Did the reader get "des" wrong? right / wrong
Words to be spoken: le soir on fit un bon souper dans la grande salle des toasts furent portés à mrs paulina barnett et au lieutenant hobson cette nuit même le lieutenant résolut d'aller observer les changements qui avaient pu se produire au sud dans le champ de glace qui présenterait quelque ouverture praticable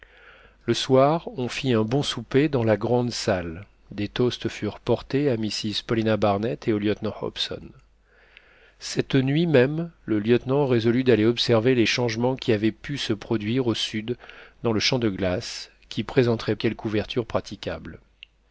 right